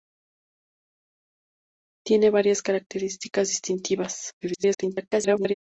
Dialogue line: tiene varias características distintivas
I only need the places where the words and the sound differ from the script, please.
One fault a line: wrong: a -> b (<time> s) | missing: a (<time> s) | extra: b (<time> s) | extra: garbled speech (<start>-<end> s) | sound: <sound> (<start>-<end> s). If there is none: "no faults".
extra: garbled speech (4.4-5.5 s)